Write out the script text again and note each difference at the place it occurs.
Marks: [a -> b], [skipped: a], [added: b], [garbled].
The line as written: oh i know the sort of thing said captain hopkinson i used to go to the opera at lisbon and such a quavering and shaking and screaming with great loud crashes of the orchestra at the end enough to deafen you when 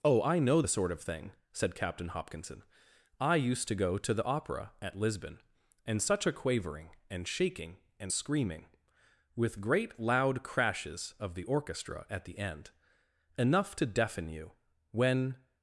oh i know the sort of thing said captain hopkinson i used to go to the opera at lisbon and such a quavering and shaking and screaming with great loud crashes of the orchestra at the end enough to deafen you when